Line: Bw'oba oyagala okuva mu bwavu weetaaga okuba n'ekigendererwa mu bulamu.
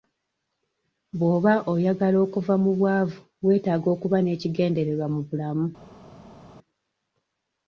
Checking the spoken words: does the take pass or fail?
pass